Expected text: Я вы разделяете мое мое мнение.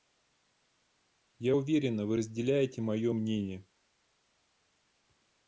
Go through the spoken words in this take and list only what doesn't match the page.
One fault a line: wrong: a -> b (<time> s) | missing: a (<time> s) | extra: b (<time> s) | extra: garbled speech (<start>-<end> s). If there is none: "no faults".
extra: уверена (1.5 s)
missing: мое (3.1 s)